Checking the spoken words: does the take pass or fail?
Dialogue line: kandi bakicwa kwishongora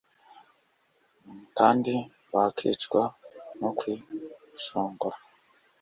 fail